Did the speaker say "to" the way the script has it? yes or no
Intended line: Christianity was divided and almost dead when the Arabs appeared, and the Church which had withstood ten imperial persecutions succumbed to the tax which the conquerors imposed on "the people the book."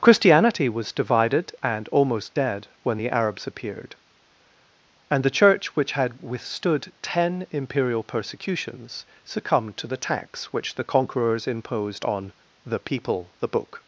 yes